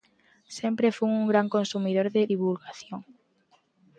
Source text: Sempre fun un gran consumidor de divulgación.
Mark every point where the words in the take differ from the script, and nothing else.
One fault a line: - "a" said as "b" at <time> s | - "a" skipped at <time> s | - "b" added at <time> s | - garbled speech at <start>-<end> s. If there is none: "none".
none